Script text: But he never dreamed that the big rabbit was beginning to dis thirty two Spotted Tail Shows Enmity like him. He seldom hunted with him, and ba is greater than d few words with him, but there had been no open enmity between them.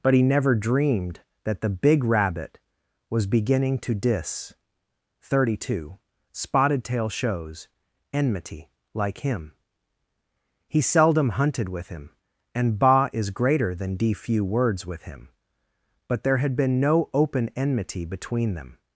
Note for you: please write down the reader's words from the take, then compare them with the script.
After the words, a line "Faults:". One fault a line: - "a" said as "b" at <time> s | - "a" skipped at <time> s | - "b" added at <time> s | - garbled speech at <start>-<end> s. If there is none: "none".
But he never dreamed that the big rabbit was beginning to dis thirty two Spotted Tail Shows Enmity like him. He seldom hunted with him, and ba is greater than d few words with him, but there had been no open enmity between them.
Faults:
none